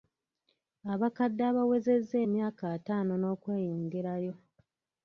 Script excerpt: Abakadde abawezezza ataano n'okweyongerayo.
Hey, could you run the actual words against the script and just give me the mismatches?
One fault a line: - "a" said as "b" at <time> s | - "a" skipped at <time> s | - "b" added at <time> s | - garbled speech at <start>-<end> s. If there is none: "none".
- "emyaka" added at 2.2 s